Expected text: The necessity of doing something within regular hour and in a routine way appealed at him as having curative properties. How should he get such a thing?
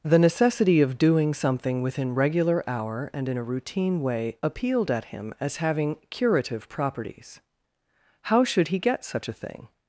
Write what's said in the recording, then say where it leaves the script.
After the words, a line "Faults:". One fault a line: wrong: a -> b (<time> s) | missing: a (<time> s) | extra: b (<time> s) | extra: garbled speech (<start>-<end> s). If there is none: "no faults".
The necessity of doing something within regular hour and in a routine way appealed at him as having curative properties. How should he get such a thing?
Faults:
no faults